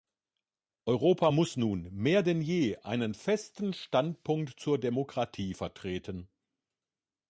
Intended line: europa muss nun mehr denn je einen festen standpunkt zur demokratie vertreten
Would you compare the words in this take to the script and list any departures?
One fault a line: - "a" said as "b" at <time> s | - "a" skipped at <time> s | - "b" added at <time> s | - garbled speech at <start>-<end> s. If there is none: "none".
none